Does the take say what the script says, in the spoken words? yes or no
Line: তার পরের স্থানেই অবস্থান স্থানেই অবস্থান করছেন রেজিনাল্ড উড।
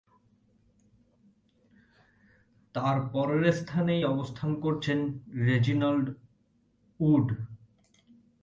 no